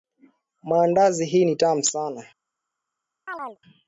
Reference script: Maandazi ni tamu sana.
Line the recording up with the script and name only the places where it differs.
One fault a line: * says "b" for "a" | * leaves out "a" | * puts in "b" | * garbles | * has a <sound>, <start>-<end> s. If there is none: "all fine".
* puts in "hii"
* has a chirp, 3.3-3.6 s